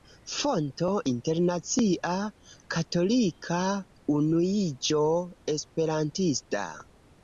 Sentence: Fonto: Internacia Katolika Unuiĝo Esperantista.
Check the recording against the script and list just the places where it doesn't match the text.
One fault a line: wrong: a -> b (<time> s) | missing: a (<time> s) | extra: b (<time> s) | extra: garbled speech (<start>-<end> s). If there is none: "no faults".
no faults